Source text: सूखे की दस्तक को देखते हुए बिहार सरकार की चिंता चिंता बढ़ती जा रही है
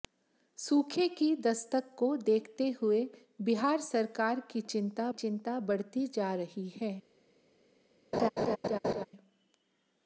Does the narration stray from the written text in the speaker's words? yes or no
no